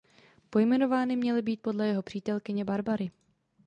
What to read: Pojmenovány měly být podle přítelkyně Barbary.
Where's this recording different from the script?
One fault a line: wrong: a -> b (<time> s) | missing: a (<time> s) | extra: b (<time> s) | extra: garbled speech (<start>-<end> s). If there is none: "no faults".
extra: jeho (1.9 s)